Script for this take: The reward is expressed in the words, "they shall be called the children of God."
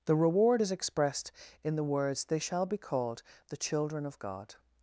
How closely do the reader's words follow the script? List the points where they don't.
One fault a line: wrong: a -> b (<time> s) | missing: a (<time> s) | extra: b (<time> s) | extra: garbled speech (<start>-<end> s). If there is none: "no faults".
no faults